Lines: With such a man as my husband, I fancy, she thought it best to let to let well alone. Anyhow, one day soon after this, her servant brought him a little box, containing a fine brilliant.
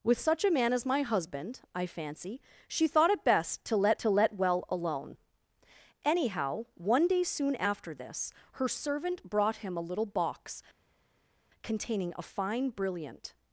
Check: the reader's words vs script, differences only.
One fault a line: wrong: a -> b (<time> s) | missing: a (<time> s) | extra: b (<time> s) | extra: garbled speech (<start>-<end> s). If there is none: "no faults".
no faults